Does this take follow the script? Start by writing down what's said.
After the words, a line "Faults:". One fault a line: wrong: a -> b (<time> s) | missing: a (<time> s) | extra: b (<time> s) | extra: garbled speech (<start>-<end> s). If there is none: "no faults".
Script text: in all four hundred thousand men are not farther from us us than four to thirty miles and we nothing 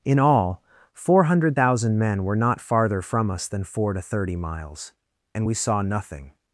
in all four hundred thousand men were not farther from us than four to thirty miles and we saw nothing
Faults:
wrong: are -> were (2.2 s)
missing: us (3.5 s)
extra: saw (5.5 s)